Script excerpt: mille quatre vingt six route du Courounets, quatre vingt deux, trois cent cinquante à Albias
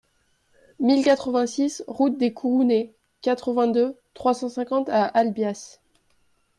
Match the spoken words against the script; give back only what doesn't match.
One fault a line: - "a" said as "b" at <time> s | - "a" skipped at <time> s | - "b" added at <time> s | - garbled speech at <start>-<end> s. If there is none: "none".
- "du" said as "des" at 2.2 s